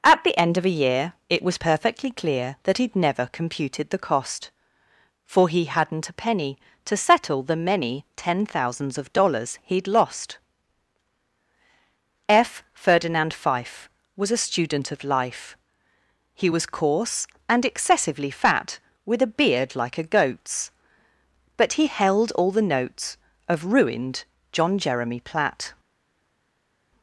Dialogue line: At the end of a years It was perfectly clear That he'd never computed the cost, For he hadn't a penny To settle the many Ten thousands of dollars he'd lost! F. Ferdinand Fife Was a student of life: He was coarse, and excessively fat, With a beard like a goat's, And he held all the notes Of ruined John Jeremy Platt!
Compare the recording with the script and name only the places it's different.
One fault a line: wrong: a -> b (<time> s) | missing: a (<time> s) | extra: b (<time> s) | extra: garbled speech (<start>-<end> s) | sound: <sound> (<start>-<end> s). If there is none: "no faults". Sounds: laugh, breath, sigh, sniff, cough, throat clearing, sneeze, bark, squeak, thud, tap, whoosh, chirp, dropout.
wrong: years -> year (0.8 s)
wrong: And -> But (21.6 s)